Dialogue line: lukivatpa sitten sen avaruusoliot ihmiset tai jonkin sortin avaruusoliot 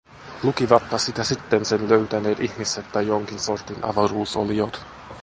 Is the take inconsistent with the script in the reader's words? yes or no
yes